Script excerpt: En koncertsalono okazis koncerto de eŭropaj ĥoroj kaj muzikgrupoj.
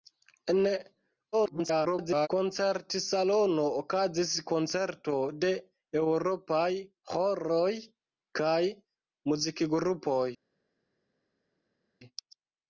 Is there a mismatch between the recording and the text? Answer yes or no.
yes